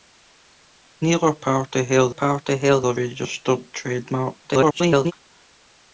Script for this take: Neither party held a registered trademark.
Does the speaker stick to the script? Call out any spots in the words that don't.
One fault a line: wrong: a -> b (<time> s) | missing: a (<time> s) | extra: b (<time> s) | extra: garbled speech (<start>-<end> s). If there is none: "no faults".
extra: party held (2.1 s)
extra: garbled speech (4.4-5.1 s)